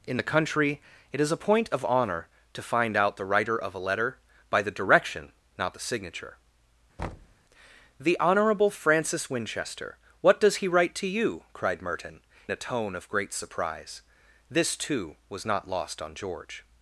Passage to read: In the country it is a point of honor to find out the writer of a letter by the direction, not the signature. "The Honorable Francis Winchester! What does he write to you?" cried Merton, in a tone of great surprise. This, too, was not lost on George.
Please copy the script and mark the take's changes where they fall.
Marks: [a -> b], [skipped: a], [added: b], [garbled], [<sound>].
In the country it is a point of honor to find out the writer of a letter by the direction, not the signature. [thud] "The Honorable Francis Winchester! What does he write to you?" cried Merton, [skipped: in] a tone of great surprise. This, too, was not lost on George.